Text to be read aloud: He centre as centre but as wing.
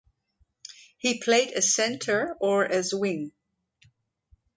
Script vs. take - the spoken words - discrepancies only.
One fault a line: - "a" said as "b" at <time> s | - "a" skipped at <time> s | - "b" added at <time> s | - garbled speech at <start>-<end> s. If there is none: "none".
- "centre" said as "played" at 1.2 s
- "but" said as "or" at 2.4 s